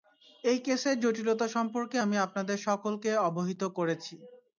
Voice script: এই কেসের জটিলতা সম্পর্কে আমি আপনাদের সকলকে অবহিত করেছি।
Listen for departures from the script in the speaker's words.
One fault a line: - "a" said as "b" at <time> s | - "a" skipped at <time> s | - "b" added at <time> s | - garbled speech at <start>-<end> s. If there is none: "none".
none